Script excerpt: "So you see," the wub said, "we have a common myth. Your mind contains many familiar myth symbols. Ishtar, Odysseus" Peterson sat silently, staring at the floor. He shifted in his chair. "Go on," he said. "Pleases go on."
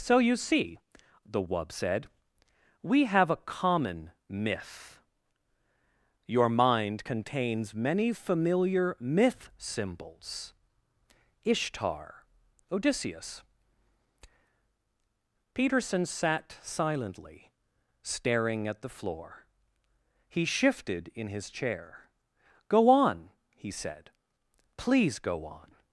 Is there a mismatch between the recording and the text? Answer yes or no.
yes